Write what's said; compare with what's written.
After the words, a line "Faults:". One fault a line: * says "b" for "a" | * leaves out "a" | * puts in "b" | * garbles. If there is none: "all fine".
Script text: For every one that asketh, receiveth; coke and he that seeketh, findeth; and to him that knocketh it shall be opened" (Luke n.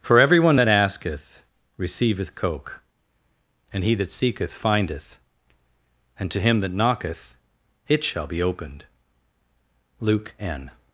For every one that asketh, receiveth; coke and he that seeketh, findeth; and to him that knocketh it shall be opened" (Luke n.
Faults:
all fine